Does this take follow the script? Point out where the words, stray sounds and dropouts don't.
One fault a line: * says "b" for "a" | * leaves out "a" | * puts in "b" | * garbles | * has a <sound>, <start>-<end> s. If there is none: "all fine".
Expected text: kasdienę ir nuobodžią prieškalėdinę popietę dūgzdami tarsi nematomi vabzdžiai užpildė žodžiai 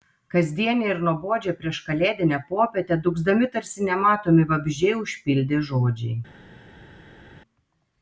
all fine